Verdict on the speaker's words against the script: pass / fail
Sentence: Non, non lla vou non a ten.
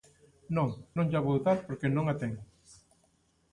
fail